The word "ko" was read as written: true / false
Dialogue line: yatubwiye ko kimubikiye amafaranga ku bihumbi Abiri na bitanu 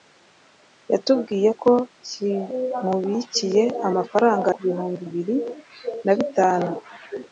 true